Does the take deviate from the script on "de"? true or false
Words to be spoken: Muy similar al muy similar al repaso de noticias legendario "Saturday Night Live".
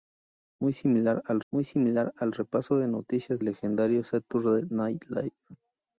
false